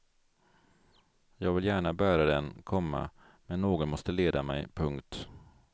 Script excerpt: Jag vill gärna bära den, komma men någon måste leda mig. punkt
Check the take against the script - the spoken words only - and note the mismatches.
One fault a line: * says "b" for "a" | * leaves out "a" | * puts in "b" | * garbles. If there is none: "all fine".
all fine